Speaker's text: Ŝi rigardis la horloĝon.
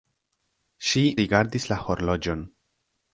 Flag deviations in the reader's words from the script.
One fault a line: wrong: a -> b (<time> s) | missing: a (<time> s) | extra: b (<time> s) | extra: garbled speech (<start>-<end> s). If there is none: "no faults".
no faults